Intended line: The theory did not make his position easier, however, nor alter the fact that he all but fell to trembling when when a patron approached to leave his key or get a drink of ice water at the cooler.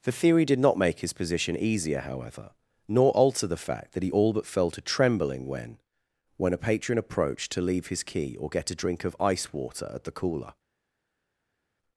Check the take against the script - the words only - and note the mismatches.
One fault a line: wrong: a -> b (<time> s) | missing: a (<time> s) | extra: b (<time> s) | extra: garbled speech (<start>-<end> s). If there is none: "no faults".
no faults